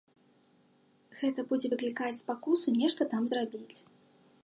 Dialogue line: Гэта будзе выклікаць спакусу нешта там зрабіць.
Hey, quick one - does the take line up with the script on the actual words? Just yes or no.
yes